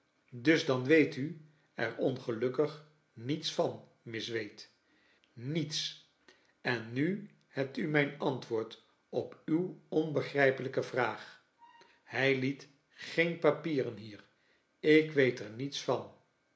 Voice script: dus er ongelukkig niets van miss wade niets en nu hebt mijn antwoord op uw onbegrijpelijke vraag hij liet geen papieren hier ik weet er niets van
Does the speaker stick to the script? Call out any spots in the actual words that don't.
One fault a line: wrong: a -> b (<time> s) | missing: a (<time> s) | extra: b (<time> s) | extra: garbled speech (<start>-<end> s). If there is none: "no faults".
extra: dan weet u (0.7 s)
extra: u (7.8 s)